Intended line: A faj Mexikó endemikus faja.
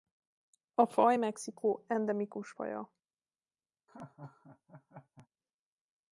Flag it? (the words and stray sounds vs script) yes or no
yes